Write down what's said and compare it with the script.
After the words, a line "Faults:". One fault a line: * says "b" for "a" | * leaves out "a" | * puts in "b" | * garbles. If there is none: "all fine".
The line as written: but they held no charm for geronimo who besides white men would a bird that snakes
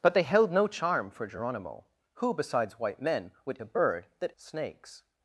but they held no charm for geronimo who besides white men would a bird that snakes
Faults:
all fine